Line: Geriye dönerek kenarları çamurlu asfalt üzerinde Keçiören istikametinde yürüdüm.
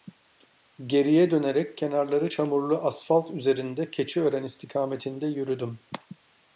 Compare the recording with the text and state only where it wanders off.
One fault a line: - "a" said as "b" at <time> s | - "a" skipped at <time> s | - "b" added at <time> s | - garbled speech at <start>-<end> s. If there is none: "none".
none